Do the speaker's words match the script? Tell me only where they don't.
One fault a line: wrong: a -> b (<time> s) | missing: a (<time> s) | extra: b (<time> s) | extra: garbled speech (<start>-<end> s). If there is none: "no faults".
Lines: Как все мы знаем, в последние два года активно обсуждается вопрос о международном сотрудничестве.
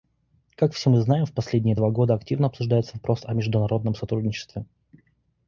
no faults